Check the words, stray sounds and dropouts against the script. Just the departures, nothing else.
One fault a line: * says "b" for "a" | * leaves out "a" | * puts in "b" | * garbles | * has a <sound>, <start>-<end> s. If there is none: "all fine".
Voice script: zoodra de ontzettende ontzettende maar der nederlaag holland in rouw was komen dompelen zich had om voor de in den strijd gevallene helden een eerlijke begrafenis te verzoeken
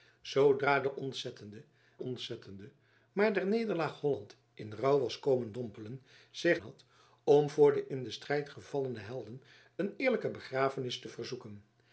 all fine